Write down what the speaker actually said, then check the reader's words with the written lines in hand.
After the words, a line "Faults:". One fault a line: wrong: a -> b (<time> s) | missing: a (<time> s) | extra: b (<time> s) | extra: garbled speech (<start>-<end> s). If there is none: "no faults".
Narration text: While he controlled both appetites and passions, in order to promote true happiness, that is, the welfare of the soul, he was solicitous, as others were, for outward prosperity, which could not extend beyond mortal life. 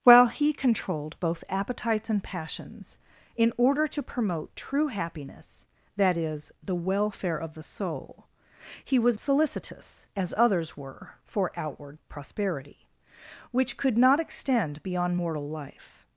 While he controlled both appetites and passions, in order to promote true happiness, that is, the welfare of the soul, he was solicitous, as others were, for outward prosperity, which could not extend beyond mortal life.
Faults:
no faults